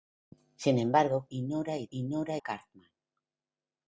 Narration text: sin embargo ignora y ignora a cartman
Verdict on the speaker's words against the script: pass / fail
pass